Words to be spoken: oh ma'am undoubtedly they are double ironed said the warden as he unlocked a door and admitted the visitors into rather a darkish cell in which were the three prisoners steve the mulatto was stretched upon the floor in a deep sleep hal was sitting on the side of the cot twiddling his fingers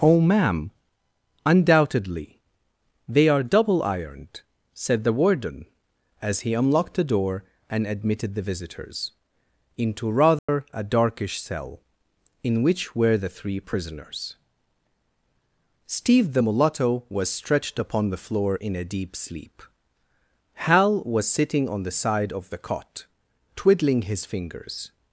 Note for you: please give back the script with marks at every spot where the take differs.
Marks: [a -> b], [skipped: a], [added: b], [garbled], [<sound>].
oh ma'am undoubtedly they are double ironed said the warden as he unlocked [a -> the] door and admitted the visitors into rather [dropout] a darkish cell in which were the three prisoners steve the mulatto was stretched upon the floor in a deep sleep hal was sitting on the side of the cot twiddling his fingers